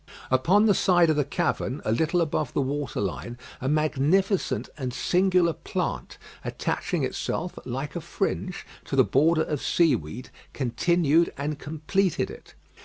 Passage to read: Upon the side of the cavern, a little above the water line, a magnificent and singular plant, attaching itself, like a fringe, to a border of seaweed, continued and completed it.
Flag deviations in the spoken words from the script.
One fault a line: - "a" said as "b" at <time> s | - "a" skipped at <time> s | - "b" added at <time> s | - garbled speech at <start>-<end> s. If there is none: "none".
- "a" said as "the" at 8.9 s